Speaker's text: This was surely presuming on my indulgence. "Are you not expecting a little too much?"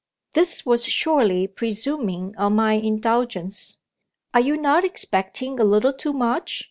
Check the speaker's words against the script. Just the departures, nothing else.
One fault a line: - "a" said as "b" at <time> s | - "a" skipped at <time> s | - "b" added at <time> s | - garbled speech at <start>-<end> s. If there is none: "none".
none